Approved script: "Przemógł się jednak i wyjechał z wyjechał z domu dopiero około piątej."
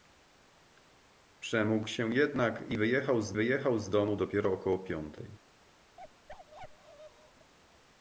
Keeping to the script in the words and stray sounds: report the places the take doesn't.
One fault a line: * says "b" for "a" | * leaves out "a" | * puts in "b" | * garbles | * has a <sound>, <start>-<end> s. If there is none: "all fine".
* has a bark, 6.0-7.5 s